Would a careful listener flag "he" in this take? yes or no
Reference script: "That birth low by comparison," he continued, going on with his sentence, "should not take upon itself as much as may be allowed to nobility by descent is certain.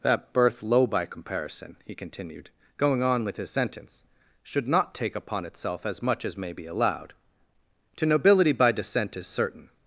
no